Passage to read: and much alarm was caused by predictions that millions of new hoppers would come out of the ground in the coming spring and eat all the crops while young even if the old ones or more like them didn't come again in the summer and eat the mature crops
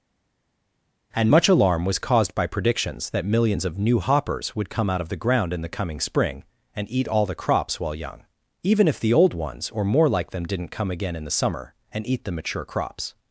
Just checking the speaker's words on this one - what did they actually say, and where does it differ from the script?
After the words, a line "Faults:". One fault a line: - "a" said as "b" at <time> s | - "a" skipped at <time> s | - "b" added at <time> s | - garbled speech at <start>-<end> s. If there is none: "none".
and much alarm was caused by predictions that millions of new hoppers would come out of the ground in the coming spring and eat all the crops while young even if the old ones or more like them didn't come again in the summer and eat the mature crops
Faults:
none